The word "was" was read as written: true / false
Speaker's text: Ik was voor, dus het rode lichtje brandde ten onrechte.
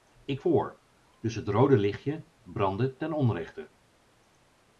false